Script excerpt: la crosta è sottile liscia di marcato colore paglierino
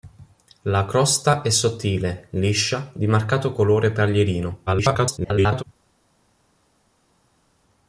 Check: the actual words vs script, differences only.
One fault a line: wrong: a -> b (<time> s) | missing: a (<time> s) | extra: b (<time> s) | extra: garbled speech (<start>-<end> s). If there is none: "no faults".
extra: garbled speech (4.7-5.6 s)